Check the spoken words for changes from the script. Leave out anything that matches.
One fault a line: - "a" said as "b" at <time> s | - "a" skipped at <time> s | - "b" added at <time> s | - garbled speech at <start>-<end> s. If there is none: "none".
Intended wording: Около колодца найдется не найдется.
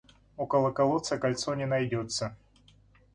- "найдется" said as "кольцо" at 1.2 s